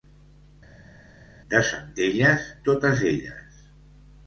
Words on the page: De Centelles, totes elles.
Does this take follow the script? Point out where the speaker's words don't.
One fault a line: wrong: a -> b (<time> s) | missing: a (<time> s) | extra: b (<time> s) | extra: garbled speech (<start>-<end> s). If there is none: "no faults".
no faults